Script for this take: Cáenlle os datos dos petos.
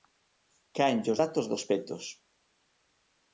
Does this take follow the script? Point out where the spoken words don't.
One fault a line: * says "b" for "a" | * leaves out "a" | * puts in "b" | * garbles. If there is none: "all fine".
all fine